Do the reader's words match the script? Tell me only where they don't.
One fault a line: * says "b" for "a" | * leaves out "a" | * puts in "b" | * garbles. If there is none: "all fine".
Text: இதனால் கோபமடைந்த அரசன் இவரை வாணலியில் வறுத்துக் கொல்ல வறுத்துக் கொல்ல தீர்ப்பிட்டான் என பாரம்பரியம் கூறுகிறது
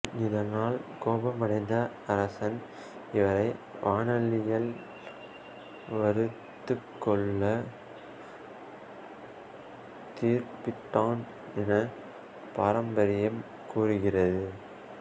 * leaves out "வறுத்துக் கொல்ல"